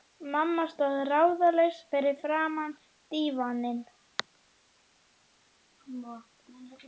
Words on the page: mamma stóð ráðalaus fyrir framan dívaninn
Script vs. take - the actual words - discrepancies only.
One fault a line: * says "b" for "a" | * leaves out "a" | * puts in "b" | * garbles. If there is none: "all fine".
all fine